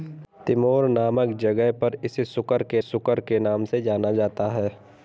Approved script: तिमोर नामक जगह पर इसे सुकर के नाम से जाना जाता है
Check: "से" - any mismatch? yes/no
no